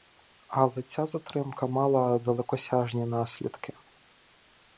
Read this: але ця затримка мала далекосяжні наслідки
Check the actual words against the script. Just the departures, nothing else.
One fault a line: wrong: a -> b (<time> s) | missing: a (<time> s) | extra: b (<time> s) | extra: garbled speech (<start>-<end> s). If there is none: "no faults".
no faults